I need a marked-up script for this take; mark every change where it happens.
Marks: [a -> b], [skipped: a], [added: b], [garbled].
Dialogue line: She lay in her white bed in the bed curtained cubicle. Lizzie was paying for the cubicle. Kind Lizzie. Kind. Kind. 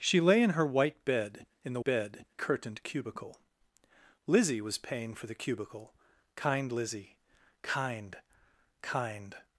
She lay in her white bed in the bed curtained cubicle. Lizzie was paying for the cubicle. Kind Lizzie. Kind. Kind.